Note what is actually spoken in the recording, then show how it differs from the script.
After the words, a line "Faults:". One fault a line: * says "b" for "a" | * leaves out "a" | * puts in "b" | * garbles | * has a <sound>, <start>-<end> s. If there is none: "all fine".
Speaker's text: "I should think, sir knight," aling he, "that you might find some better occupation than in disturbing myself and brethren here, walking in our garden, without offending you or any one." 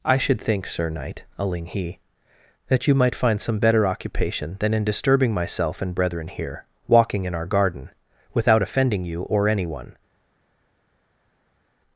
"I should think, sir knight," aling he, "that you might find some better occupation than in disturbing myself and brethren here, walking in our garden, without offending you or any one."
Faults:
all fine